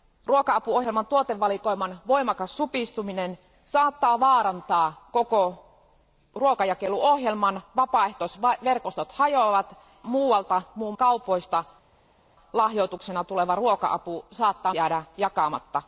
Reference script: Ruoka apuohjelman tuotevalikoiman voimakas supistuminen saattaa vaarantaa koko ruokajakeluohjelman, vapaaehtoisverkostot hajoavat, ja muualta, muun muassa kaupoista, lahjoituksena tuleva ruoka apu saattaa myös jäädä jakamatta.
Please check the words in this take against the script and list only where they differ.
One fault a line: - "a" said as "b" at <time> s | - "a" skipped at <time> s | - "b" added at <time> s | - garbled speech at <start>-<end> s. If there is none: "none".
- "ja" skipped at 9.8 s
- "muassa" skipped at 10.9 s
- "myös" skipped at 14.7 s